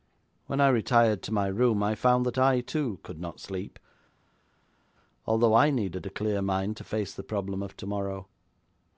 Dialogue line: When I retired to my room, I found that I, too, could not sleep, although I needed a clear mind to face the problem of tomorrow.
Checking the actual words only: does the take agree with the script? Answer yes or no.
yes